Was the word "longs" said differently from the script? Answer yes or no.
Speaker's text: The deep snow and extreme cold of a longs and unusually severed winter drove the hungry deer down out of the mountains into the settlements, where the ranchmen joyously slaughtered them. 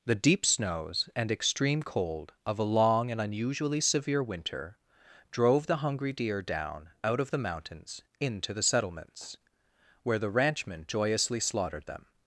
yes